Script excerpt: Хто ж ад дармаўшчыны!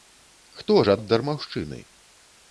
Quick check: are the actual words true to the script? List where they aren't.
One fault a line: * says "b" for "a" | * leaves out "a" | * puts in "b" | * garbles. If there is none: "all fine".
all fine